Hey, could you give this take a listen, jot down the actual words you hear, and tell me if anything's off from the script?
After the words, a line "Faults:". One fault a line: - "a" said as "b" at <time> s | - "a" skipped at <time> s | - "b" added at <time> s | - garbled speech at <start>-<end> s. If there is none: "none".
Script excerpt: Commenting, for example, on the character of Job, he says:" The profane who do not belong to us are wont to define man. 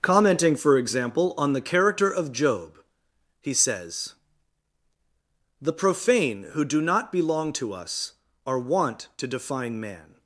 Commenting, for example, on the character of Job, he says:" The profane who do not belong to us are wont to define man.
Faults:
none